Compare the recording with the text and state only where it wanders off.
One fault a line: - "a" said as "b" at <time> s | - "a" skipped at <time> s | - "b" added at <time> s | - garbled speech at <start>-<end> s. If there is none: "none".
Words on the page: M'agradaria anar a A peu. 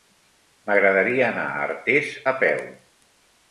- "Artés" added at 1.7 s